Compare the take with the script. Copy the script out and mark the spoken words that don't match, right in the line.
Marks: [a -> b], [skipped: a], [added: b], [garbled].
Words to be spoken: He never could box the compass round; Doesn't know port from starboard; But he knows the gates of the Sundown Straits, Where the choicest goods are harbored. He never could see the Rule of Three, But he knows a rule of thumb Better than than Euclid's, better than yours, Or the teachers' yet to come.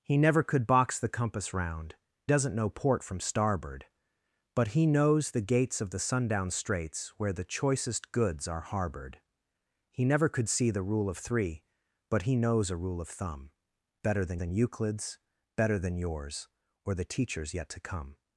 He never could box the compass round; Doesn't know port from starboard; But he knows the gates of the Sundown Straits, Where the choicest goods are harbored. He never could see the Rule of Three, But he knows a rule of thumb Better than than Euclid's, better than yours, Or the teachers' yet to come.